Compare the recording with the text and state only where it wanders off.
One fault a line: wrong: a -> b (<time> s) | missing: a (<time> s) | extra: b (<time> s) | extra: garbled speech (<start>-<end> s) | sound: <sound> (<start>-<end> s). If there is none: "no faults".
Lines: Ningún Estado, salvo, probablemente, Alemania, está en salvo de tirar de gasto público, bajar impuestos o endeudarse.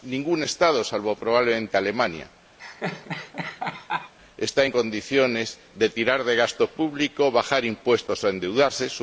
sound: laugh (2.6-4.1 s)
wrong: salvo -> condiciones (4.7 s)